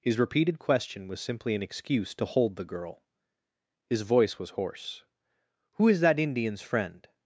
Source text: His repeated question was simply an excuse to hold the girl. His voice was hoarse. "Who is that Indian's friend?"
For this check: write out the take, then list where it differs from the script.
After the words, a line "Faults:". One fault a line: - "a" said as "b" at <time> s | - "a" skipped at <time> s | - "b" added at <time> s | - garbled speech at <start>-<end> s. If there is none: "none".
His repeated question was simply an excuse to hold the girl. His voice was hoarse. "Who is that Indian's friend?"
Faults:
none